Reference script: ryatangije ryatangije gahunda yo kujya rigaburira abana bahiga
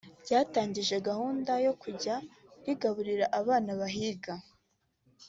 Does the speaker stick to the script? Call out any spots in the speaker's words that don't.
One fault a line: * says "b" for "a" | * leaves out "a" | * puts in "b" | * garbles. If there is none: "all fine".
* leaves out "ryatangije"